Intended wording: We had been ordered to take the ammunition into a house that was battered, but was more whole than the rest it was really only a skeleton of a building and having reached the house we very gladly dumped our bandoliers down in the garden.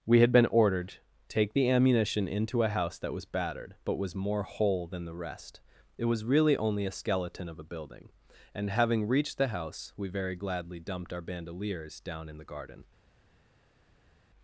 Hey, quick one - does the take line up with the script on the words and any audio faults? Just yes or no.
no